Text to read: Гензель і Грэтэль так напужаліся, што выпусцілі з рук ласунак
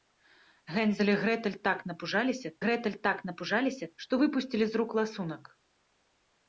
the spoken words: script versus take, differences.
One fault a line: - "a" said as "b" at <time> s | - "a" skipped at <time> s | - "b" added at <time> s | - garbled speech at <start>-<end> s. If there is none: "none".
- "Грэтэль так напужаліся" added at 2.7 s